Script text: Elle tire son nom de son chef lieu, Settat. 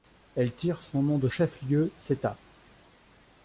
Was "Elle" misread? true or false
false